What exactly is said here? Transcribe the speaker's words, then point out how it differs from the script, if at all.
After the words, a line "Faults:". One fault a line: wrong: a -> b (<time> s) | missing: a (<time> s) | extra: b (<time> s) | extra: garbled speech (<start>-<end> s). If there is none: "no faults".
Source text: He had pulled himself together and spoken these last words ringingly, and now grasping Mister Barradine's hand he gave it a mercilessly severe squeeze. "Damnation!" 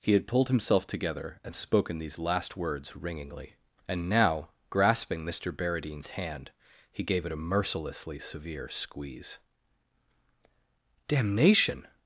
He had pulled himself together and spoken these last words ringingly, and now grasping Mister Barradine's hand he gave it a mercilessly severe squeeze. "Damnation!"
Faults:
no faults